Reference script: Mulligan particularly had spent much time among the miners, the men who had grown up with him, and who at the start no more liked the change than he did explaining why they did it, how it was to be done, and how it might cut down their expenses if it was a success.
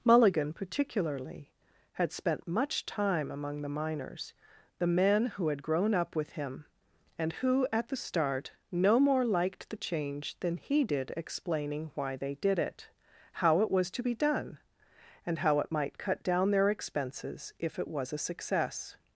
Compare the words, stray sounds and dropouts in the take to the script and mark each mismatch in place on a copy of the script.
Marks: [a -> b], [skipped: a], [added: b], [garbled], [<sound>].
Mulligan particularly had spent much time among the miners, the men who had grown up with him, and who at the start no more liked the change than he did explaining why they did it, how it was to be done, and how it might cut down their expenses if it was a success.